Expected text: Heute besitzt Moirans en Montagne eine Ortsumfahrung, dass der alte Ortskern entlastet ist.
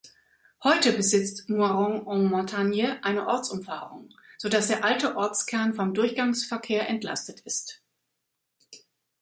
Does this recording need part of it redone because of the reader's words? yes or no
yes